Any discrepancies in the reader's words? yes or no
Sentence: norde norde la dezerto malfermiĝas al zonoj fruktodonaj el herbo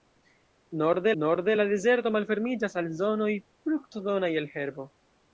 no